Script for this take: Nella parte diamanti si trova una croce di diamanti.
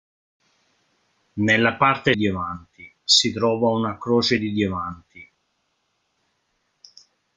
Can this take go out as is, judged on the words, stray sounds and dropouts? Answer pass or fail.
pass